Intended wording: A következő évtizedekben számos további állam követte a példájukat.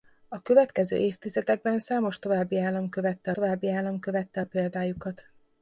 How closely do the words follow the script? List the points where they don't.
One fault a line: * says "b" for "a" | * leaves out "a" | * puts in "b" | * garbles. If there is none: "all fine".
* puts in "további állam követte"